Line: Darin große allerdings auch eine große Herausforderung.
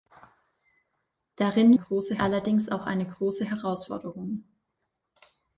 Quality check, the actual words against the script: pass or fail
pass